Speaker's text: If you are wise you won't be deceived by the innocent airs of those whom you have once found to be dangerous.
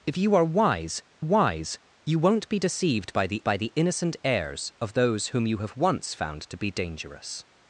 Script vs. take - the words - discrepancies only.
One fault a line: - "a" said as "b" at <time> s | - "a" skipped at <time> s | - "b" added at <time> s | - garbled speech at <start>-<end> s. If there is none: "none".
- "wise" added at 1.2 s
- "by the" added at 3.4 s